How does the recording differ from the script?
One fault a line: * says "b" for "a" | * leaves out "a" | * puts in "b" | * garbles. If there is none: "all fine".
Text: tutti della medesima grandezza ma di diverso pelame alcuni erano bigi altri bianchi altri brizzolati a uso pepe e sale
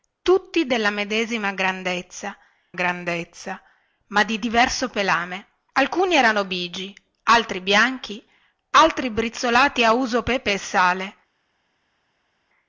* puts in "grandezza"